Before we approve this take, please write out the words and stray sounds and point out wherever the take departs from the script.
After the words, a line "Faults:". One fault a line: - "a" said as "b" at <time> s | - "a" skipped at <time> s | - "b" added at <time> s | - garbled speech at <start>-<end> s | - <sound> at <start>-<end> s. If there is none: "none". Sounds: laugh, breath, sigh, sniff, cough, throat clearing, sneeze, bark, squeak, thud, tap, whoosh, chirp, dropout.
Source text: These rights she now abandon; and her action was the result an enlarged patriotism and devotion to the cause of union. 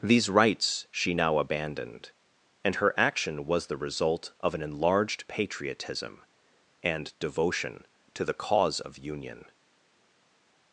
These rights she now abandoned; and her action was the result of an enlarged patriotism and devotion to the cause of union.
Faults:
- "abandon" said as "abandoned" at 1.4 s
- "of" added at 4.4 s